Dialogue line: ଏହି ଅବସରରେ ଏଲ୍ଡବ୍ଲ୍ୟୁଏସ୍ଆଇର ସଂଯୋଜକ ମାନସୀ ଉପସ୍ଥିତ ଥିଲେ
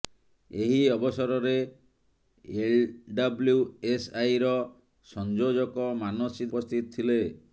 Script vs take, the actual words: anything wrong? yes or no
no